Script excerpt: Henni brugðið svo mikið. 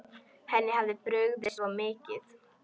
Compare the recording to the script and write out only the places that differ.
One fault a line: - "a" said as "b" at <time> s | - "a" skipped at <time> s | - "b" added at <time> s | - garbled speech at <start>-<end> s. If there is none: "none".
- "hafði" added at 0.8 s